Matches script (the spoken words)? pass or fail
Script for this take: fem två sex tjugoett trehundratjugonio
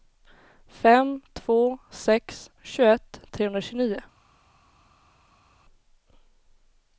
pass